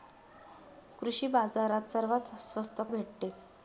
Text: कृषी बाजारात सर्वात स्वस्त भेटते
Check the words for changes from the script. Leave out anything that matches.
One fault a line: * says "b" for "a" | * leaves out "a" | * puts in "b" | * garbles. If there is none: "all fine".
all fine